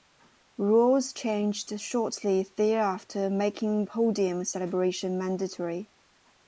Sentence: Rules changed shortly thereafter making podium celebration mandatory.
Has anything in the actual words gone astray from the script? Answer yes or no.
no